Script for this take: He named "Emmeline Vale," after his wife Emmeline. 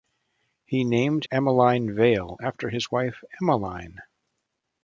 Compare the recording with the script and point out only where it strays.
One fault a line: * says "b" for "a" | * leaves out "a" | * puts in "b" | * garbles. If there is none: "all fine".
all fine